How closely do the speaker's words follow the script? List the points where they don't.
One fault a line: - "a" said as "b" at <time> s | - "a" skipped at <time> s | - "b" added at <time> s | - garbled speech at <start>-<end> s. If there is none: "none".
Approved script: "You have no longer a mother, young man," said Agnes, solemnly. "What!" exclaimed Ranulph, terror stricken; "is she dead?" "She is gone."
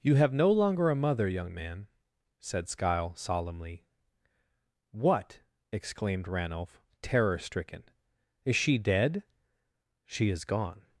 - "Agnes" said as "Skyle" at 2.7 s